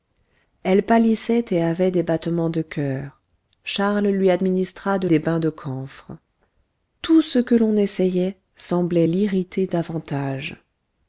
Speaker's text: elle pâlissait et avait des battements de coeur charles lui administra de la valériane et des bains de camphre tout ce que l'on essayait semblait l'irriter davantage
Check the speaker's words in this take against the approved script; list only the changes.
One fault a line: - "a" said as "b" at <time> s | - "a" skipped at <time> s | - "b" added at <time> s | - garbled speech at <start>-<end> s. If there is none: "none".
- "la valériane et" skipped at 5.1 s